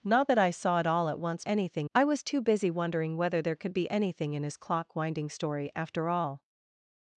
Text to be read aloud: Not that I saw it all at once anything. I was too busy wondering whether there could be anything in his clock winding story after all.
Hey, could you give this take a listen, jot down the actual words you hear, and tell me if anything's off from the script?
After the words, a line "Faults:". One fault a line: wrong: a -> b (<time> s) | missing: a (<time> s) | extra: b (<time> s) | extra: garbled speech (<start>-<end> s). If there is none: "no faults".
Not that I saw it all at once anything. I was too busy wondering whether there could be anything in his clock winding story after all.
Faults:
no faults